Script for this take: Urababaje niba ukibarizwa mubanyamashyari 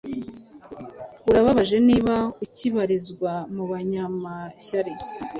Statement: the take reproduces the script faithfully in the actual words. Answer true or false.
true